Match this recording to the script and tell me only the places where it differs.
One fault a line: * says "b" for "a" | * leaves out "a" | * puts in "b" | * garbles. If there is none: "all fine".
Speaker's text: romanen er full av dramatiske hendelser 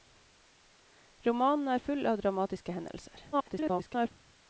* garbles